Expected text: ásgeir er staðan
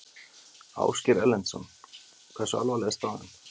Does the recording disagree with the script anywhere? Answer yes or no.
yes